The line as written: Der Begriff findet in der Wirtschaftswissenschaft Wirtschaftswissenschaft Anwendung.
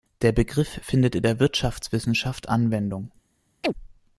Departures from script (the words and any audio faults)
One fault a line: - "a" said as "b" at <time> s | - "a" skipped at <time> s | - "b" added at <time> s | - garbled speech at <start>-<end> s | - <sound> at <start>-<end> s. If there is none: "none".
- "Wirtschaftswissenschaft" skipped at 2.5 s
- chirp at 3.6-3.7 s